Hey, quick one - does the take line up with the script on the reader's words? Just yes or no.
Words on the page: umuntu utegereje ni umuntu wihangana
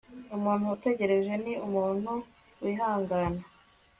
yes